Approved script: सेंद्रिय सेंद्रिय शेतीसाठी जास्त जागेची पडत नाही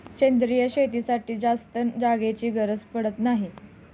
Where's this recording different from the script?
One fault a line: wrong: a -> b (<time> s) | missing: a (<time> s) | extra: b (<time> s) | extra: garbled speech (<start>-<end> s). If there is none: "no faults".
missing: सेंद्रिय (0.7 s)
extra: गरज (2.5 s)